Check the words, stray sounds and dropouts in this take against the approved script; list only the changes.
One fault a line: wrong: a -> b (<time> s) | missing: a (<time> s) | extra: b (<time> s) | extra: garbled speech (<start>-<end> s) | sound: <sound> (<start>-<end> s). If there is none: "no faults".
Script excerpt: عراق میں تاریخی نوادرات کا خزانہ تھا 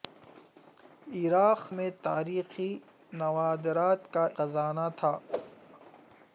sound: whoosh (5.3-5.6 s)